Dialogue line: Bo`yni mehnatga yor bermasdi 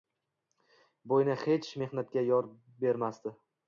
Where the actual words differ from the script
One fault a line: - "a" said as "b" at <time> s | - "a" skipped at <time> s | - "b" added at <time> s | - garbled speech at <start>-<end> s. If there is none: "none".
- "hech" added at 1.4 s